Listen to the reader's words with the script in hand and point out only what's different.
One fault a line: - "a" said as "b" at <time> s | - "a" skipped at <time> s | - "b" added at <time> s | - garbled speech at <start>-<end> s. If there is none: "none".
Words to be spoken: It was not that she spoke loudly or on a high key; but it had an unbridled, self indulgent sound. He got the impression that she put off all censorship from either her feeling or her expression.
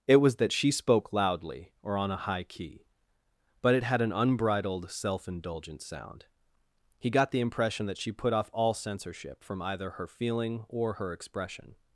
- "not" skipped at 0.4 s